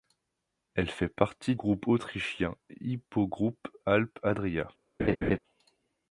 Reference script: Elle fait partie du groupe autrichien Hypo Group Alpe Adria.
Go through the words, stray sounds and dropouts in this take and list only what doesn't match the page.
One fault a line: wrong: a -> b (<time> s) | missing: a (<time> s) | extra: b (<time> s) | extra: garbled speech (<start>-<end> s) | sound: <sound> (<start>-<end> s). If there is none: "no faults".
missing: du (1.6 s)
sound: laugh (5.0-5.4 s)